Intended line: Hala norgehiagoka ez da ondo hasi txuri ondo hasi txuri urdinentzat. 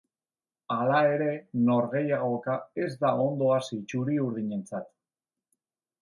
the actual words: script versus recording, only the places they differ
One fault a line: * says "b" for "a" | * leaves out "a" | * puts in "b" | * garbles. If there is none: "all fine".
* puts in "ere"
* leaves out "ondo hasi txuri"